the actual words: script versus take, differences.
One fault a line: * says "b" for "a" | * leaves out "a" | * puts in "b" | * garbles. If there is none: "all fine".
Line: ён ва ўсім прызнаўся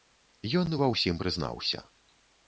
all fine